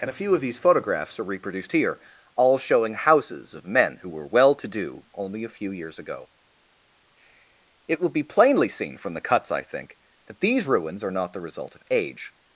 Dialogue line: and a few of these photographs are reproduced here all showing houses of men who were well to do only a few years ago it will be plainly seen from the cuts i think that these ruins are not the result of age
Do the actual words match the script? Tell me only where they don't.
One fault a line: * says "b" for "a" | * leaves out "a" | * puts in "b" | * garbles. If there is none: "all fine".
all fine